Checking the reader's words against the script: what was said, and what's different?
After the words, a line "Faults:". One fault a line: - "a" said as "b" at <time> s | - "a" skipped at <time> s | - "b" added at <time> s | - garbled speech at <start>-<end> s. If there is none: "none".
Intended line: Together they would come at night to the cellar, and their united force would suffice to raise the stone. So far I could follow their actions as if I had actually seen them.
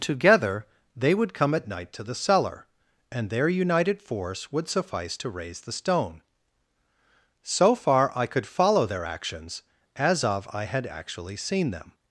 Together they would come at night to the cellar, and their united force would suffice to raise the stone. So far I could follow their actions as of I had actually seen them.
Faults:
- "if" said as "of" at 10.2 s